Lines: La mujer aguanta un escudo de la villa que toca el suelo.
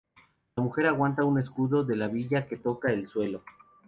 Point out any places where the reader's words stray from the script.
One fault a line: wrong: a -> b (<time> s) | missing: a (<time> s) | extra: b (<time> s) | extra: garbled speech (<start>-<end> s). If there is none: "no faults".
no faults